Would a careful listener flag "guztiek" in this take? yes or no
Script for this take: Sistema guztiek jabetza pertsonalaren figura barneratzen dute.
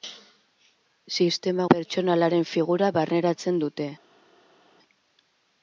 yes